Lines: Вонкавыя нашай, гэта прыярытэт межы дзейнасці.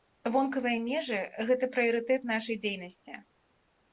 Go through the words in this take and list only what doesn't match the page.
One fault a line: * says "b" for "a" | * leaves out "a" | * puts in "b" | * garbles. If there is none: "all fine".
* says "межы" for "нашай"
* says "нашай" for "межы"